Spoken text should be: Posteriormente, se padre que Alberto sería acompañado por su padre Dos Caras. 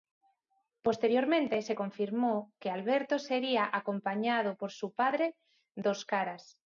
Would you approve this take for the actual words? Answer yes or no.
no